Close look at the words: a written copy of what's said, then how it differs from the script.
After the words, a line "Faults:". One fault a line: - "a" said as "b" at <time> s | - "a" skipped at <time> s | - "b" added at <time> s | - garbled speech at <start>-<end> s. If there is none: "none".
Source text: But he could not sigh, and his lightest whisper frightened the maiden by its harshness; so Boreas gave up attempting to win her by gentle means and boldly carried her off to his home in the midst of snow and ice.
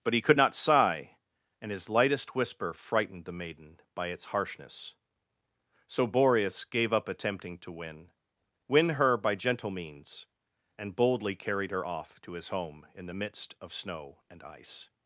But he could not sigh, and his lightest whisper frightened the maiden by its harshness; so Boreas gave up attempting to win win her by gentle means and boldly carried her off to his home in the midst of snow and ice.
Faults:
- "win" added at 8.7 s